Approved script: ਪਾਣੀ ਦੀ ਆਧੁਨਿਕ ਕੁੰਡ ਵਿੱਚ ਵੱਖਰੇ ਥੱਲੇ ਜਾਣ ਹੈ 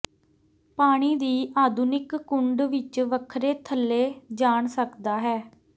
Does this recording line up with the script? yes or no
no